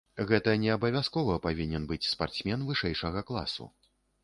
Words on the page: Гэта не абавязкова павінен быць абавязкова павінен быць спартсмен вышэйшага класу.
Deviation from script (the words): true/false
true